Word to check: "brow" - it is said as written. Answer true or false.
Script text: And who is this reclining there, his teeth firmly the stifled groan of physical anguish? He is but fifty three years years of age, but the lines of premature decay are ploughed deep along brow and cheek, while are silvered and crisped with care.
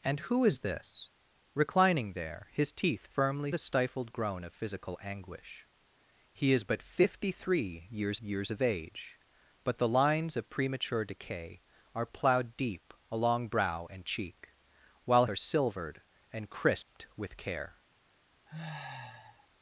true